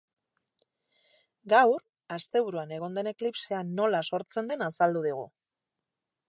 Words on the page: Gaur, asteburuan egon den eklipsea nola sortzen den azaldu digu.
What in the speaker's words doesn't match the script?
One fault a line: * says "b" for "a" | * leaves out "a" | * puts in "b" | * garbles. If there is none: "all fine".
all fine